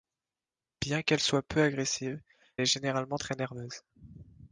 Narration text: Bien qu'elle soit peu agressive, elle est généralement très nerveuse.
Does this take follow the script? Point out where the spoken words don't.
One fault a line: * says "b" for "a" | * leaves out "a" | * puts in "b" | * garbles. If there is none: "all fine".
* leaves out "elle"